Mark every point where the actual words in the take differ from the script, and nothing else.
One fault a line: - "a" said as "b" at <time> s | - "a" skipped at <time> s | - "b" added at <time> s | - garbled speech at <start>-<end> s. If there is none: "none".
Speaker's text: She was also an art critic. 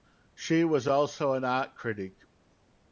none